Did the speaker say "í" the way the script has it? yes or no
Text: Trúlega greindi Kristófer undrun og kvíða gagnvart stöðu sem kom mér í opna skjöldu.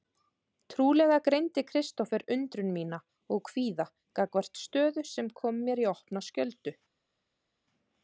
yes